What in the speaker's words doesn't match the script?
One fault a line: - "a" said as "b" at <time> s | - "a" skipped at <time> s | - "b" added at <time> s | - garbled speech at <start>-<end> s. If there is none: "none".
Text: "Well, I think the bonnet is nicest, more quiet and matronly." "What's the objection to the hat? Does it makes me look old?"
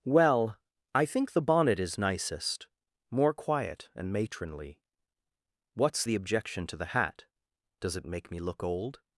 - "makes" said as "make" at 8.0 s